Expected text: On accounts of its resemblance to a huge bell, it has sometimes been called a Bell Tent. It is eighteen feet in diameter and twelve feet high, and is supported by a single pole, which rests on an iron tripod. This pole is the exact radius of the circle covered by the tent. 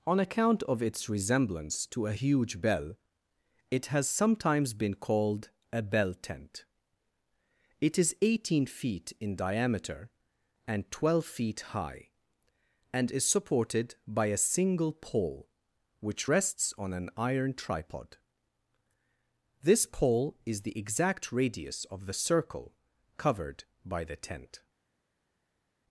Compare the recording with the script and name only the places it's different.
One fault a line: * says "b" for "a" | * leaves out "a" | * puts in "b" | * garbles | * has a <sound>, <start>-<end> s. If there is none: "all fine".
* says "account" for "accounts"